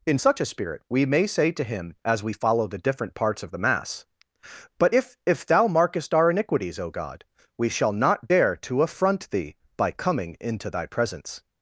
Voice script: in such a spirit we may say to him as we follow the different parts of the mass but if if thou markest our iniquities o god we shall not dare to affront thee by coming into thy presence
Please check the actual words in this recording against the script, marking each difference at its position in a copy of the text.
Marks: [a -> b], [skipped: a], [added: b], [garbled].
in such a spirit we may say to him as we follow the different parts of the mass but if if thou markest our iniquities o god we shall not dare to affront thee by coming into thy presence